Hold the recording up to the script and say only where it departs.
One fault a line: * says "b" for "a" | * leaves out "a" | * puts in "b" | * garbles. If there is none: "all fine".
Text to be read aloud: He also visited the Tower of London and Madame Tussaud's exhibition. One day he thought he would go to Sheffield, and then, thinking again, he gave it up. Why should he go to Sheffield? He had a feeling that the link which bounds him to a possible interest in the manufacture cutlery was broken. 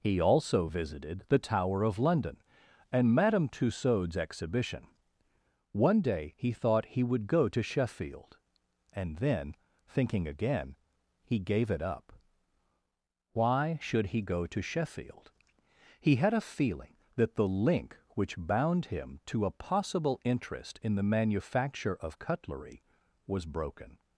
* says "bound" for "bounds"
* puts in "of"